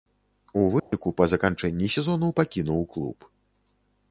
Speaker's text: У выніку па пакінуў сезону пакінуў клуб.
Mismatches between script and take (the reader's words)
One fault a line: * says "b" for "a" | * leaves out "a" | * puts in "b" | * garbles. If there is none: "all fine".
* says "заканчэнні" for "пакінуў"